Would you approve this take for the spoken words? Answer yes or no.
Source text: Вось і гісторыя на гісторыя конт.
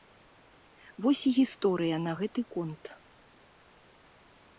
no